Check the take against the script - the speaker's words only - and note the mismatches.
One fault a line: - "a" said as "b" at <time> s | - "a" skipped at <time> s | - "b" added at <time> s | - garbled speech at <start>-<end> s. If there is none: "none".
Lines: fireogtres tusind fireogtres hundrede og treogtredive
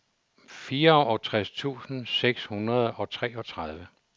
- "fireogtres" said as "seks" at 2.1 s